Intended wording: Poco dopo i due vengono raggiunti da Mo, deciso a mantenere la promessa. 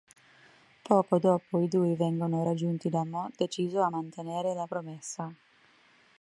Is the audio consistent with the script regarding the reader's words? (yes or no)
yes